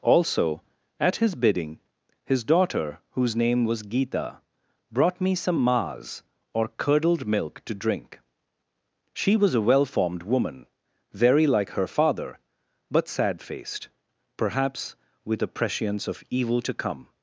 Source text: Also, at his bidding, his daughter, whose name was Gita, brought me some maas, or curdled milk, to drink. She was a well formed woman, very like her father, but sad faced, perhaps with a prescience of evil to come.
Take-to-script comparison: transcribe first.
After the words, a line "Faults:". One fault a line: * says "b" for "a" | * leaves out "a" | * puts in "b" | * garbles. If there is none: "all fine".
Also, at his bidding, his daughter, whose name was Gita, brought me some maas, or curdled milk, to drink. She was a well formed woman, very like her father, but sad faced, perhaps with a prescience of evil to come.
Faults:
all fine